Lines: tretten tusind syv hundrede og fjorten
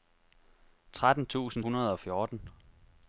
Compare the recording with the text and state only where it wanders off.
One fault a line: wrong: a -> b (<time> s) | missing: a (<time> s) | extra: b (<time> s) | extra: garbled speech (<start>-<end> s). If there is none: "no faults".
missing: syv (1.6 s)